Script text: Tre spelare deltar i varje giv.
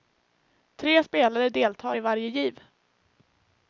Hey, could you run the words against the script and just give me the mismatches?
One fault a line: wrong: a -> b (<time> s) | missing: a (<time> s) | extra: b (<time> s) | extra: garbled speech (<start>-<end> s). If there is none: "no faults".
no faults